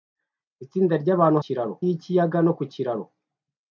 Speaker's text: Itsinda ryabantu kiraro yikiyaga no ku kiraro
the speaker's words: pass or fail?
pass